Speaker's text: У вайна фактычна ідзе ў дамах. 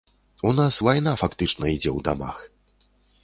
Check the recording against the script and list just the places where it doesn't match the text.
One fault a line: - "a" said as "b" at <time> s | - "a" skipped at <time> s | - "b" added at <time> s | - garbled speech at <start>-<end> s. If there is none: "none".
- "нас" added at 0.6 s